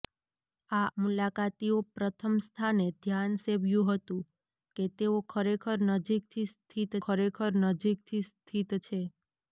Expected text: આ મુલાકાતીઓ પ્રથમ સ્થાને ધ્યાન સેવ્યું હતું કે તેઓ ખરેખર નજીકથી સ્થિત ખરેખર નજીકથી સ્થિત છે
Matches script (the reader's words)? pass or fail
pass